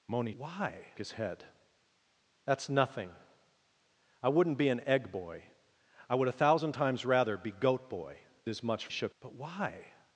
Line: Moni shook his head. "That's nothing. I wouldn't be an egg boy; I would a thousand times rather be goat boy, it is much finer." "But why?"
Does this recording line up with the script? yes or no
no